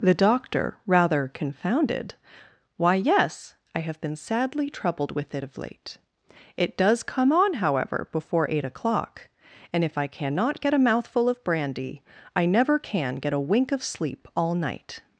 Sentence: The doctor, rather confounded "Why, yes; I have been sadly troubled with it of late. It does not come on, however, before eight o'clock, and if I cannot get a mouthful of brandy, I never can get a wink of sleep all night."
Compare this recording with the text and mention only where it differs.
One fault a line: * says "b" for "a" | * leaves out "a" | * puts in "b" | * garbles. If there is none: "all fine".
* leaves out "not"